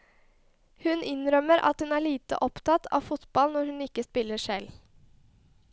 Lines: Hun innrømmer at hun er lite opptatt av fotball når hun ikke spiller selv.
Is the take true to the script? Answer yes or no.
yes